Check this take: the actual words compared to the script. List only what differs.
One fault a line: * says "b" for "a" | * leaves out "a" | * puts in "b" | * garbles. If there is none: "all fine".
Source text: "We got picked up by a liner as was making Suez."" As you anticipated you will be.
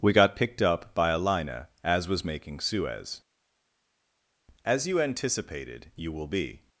all fine